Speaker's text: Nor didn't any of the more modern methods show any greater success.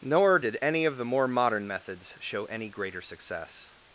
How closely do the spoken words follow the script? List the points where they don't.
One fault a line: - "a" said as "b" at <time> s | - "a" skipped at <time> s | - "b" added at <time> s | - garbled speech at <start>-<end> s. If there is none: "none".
- "didn't" said as "did" at 0.4 s